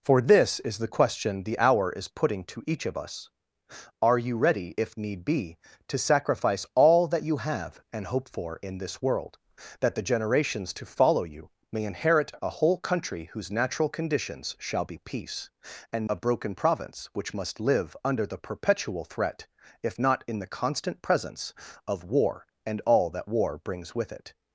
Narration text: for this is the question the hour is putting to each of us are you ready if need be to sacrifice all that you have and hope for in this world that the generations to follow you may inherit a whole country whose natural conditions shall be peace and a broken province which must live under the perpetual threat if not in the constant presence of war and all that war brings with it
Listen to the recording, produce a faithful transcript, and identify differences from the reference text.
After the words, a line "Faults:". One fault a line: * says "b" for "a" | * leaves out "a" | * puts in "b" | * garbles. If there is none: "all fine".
for this is the question the hour is putting to each of us are you ready if need be to sacrifice all that you have and hope for in this world that the generations to follow you may inherit a whole country whose natural conditions shall be peace and a broken province which must live under the perpetual threat if not in the constant presence of war and all that war brings with it
Faults:
all fine